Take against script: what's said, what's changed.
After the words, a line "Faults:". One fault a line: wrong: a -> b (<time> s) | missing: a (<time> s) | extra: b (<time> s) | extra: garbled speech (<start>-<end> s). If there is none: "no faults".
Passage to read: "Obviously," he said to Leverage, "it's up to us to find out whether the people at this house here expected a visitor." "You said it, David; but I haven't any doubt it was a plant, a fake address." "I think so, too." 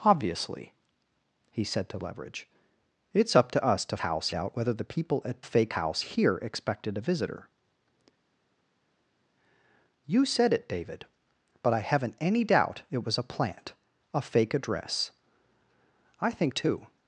"Obviously," he said to Leverage, "it's up to us to house out whether the people at fake house here expected a visitor." "You said it, David; but I haven't any doubt it was a plant, a fake address." "I think too."
Faults:
wrong: find -> house (4.0 s)
wrong: this -> fake (5.4 s)
missing: so (16.5 s)